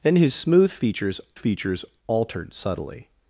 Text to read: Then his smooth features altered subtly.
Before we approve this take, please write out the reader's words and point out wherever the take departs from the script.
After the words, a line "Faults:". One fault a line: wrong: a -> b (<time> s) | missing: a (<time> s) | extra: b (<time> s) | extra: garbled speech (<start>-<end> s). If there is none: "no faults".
Then his smooth features features altered subtly.
Faults:
extra: features (1.3 s)